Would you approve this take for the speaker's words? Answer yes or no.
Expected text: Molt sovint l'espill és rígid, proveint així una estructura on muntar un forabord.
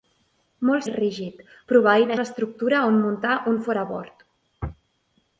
no